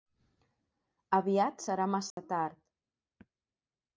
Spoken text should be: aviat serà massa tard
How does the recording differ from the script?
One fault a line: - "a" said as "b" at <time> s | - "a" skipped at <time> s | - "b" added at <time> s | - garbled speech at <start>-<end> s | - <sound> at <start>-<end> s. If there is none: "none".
- dropout at 2.1-2.2 s